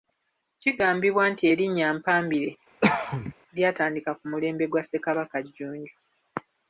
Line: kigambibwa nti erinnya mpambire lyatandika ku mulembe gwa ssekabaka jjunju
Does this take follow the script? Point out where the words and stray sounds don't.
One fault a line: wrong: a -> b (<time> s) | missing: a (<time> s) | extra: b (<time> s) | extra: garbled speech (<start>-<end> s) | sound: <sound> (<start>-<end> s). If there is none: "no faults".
sound: cough (2.8-3.3 s)